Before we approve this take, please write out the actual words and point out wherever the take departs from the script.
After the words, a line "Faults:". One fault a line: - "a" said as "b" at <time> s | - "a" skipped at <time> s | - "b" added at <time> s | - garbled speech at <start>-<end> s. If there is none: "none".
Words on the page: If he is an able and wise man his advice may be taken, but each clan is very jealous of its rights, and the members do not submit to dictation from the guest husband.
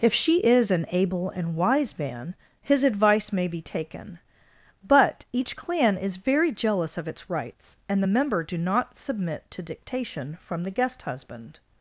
If she is an able and wise man his advice may be taken, but each clan is very jealous of its rights, and the member do not submit to dictation from the guest husband.
Faults:
- "he" said as "she" at 0.1 s
- "members" said as "member" at 8.0 s